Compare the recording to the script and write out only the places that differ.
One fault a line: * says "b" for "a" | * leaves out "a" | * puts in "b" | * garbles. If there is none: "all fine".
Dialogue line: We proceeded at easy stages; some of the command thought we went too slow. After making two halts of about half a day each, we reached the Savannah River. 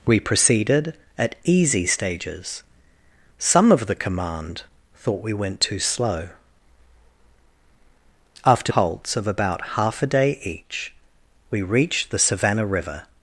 * leaves out "making two"